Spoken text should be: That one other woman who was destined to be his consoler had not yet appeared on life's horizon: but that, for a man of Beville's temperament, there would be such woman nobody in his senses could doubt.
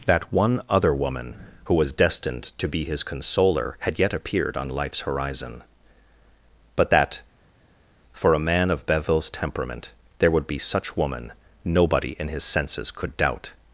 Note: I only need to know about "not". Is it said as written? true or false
false